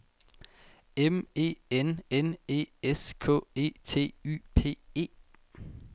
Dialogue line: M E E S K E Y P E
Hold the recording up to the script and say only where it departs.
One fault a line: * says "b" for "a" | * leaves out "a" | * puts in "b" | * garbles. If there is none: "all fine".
* puts in "N N"
* puts in "T"